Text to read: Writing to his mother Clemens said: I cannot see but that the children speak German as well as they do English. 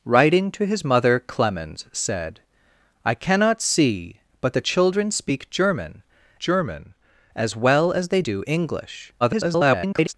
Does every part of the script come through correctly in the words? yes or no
no